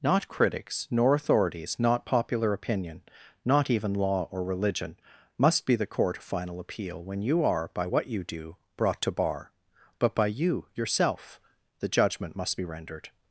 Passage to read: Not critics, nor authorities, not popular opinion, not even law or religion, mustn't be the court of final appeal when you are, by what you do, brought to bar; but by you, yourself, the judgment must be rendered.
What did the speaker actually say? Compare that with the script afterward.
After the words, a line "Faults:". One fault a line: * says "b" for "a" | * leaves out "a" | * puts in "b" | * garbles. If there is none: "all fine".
Not critics, nor authorities, not popular opinion, not even law or religion, must be the court of final appeal when you are, by what you do, brought to bar; but by you, yourself, the judgment must be rendered.
Faults:
* says "must" for "mustn't"